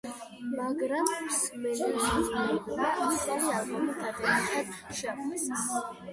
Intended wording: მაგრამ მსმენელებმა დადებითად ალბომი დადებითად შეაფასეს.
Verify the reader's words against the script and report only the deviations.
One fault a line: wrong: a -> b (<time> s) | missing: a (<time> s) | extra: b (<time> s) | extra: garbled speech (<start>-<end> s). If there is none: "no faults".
wrong: დადებითად -> ახალი (3.1 s)